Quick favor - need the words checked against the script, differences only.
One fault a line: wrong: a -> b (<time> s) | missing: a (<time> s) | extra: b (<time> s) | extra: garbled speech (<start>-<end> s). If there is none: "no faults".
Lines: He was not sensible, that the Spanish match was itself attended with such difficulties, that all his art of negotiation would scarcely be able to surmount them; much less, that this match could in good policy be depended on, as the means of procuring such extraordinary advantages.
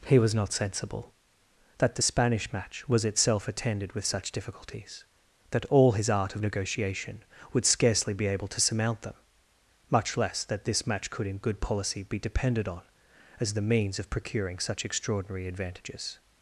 no faults